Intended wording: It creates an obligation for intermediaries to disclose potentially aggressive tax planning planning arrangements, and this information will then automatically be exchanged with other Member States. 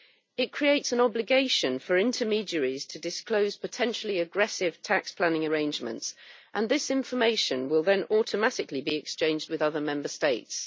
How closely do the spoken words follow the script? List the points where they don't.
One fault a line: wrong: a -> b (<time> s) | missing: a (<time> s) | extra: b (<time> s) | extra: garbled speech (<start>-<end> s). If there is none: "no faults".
missing: planning (5.5 s)